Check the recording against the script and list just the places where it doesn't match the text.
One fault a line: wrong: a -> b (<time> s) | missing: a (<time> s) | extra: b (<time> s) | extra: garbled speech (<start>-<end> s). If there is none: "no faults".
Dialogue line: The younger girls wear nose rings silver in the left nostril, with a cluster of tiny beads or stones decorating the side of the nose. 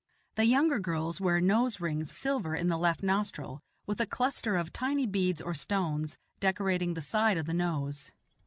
no faults